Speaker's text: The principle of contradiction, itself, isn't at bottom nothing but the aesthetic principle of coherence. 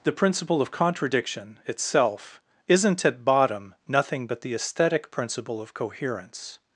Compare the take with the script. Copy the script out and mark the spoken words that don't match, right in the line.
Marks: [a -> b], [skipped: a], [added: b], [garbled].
The principle of contradiction, itself, isn't at bottom nothing but the aesthetic principle of coherence.